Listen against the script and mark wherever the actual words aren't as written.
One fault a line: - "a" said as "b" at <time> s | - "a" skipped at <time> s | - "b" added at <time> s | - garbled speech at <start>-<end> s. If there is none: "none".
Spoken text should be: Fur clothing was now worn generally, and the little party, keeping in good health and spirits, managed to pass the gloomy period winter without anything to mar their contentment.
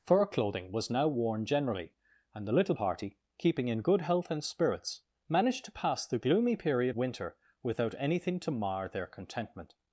none